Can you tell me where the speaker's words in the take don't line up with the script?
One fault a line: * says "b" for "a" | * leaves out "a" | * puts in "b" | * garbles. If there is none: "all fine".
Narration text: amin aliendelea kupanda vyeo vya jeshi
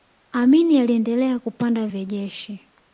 * leaves out "vyeo"